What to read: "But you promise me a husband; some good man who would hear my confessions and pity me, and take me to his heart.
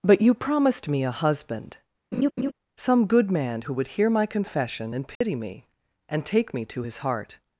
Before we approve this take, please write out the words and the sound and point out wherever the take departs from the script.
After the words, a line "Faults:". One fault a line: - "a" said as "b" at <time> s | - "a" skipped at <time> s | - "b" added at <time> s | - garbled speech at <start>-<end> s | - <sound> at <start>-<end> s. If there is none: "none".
"But you promised me a husband; some good man who would hear my confession and pity me, and take me to his heart.
Faults:
- "promise" said as "promised" at 0.3 s
- laugh at 2.1-2.5 s
- "confessions" said as "confession" at 4.3 s
- dropout at 5.2-5.2 s